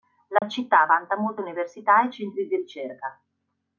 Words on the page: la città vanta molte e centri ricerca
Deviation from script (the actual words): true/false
true